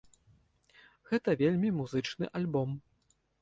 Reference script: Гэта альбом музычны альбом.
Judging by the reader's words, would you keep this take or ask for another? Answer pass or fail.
fail